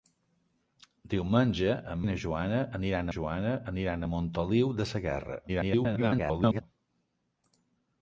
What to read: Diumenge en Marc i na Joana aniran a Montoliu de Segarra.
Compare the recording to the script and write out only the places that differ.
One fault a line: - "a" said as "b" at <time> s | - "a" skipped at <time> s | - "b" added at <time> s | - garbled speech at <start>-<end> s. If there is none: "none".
- "Marc" skipped at 2.0 s
- "Joana aniran" added at 3.2 s
- garbled speech at 5.5-6.6 s